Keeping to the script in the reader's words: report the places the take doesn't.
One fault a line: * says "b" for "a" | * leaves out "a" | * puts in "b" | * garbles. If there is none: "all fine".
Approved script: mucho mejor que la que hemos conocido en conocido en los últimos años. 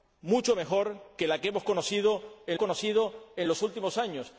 all fine